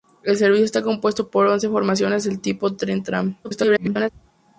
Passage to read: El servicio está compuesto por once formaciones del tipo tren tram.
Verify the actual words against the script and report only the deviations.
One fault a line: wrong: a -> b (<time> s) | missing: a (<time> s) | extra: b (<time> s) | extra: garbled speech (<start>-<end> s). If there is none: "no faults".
extra: garbled speech (3.4-4.1 s)